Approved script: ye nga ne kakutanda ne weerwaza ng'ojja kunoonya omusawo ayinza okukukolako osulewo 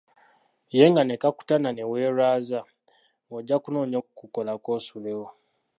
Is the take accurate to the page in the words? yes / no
no